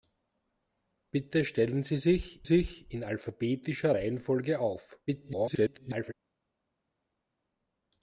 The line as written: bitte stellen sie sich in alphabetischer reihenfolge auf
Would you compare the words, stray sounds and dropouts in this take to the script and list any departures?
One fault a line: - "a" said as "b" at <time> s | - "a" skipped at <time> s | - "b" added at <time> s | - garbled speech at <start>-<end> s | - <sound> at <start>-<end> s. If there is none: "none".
- "sich" added at 2.4 s
- garbled speech at 5.1-6.1 s